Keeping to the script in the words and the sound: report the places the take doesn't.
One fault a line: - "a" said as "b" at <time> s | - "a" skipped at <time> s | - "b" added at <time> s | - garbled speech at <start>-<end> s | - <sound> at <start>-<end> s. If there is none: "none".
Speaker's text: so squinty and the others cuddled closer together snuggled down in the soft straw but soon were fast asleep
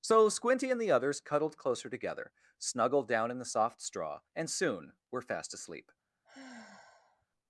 - "but" said as "and" at 4.3 s
- sigh at 6.2-7.3 s